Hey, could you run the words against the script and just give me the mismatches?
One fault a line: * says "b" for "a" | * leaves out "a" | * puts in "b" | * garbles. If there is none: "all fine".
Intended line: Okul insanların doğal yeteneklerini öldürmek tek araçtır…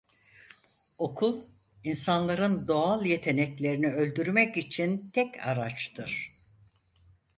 * puts in "için"